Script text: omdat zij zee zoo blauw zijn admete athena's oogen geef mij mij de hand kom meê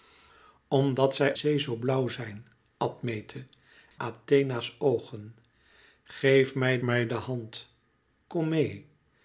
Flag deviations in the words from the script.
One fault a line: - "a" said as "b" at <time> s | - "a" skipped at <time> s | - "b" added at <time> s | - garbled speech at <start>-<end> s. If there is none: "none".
none